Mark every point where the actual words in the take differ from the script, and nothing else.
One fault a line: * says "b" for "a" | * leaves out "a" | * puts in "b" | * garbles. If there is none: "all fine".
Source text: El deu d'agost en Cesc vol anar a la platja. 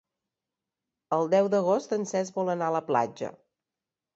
all fine